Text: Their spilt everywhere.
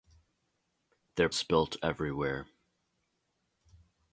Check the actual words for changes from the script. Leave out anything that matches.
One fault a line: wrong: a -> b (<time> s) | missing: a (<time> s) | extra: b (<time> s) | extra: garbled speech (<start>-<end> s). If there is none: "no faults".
no faults